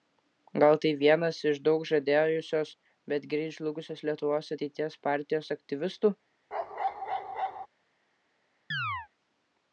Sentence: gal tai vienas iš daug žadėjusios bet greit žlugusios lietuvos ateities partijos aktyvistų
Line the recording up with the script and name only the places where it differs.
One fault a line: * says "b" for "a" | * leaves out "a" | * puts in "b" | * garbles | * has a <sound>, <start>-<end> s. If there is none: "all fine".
* has a bark, 6.5-7.7 s
* has a chirp, 8.7-9.1 s